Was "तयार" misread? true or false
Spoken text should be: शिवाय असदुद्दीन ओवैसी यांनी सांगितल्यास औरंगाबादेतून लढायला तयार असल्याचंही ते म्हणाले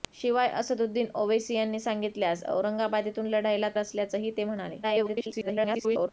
true